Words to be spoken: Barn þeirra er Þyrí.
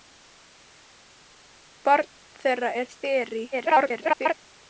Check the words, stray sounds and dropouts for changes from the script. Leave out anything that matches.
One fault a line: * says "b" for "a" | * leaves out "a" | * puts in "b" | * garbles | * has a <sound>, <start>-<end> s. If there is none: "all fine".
* garbles